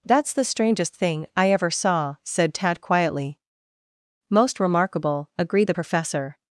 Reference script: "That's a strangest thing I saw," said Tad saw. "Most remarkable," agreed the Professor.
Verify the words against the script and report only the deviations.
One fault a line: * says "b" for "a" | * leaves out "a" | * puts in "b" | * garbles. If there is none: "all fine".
* says "the" for "a"
* puts in "ever"
* says "quietly" for "saw"